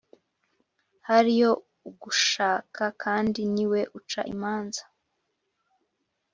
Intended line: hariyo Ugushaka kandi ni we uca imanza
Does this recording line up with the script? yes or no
yes